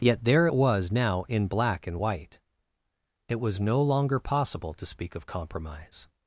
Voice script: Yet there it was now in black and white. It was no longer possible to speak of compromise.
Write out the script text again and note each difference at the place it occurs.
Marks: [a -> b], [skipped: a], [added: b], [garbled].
Yet there it was now in black and white. It was no longer possible to speak of compromise.